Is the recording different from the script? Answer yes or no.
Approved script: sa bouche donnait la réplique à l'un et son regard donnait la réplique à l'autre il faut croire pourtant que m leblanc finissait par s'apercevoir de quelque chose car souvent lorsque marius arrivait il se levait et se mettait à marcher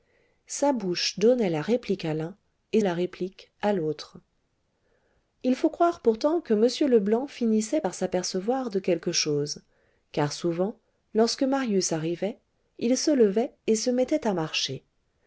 yes